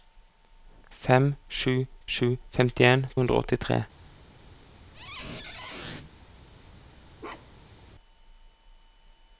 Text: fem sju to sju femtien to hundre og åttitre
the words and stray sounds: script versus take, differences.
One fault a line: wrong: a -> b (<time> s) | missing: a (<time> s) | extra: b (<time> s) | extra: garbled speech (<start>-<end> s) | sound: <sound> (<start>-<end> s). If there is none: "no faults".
missing: to (1.7 s)
missing: to (3.1 s)
sound: squeak (4.9-6.1 s)
sound: bark (7.2-7.8 s)